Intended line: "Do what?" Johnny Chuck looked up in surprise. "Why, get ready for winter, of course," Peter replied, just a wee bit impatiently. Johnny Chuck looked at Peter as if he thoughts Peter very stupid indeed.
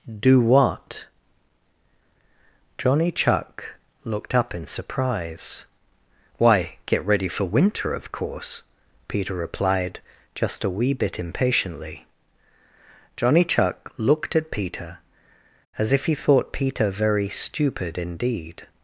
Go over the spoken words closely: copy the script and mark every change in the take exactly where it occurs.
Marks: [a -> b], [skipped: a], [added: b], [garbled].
"Do what?" Johnny Chuck looked up in surprise. "Why, get ready for winter, of course," Peter replied, just a wee bit impatiently. Johnny Chuck looked at Peter as if he [thoughts -> thought] Peter very stupid indeed.